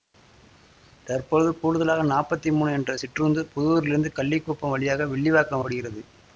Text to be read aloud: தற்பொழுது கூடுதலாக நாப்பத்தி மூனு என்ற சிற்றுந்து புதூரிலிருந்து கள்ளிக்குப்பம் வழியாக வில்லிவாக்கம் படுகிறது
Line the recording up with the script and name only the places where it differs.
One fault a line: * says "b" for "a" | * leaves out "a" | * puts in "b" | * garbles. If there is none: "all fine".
all fine